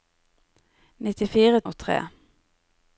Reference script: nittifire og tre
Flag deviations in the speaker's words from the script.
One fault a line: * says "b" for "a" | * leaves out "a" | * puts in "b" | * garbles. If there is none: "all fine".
all fine